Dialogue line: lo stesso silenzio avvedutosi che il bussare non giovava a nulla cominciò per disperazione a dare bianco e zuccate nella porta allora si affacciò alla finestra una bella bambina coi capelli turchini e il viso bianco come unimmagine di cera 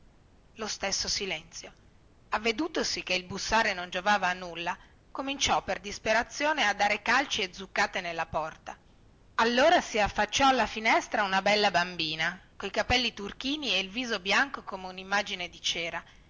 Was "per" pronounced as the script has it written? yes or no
yes